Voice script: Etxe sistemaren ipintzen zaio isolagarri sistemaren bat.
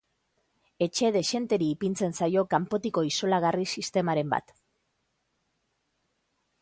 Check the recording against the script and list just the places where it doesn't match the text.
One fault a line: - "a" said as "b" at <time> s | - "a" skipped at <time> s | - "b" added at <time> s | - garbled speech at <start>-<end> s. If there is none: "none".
- "sistemaren" said as "dexenteri" at 1.1 s
- "kanpotiko" added at 2.5 s